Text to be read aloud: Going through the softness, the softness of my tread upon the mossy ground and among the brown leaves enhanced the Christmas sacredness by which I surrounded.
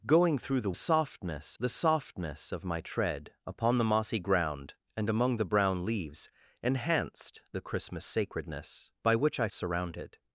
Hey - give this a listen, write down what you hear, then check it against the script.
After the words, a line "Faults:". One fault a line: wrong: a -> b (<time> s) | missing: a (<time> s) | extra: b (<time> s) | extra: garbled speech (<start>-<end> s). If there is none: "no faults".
Going through the softness, the softness of my tread upon the mossy ground and among the brown leaves enhanced the Christmas sacredness by which I surrounded.
Faults:
no faults